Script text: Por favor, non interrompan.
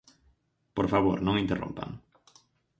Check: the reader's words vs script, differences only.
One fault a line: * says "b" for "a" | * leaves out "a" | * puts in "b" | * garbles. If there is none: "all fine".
all fine